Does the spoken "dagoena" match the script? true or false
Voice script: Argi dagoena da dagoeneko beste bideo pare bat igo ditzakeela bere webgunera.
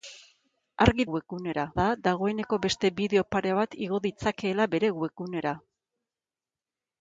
false